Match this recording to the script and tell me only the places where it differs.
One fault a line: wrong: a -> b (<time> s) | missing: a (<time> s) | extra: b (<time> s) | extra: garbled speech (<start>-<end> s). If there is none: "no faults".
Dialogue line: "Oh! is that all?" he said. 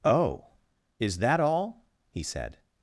no faults